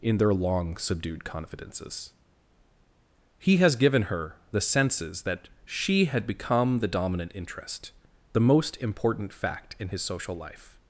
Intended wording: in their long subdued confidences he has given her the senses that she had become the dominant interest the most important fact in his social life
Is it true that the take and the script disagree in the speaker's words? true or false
false